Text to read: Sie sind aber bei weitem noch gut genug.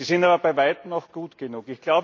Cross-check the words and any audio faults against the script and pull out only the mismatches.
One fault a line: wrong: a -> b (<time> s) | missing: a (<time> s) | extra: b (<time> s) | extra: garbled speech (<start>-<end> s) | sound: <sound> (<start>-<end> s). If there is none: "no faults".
no faults